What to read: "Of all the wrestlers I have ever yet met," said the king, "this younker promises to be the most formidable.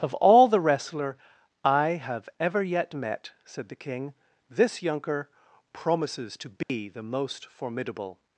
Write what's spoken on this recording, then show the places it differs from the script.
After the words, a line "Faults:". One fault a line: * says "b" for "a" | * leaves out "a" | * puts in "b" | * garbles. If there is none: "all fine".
"Of all the wrestler I have ever yet met," said the king, "this younker promises to be the most formidable.
Faults:
* says "wrestler" for "wrestlers"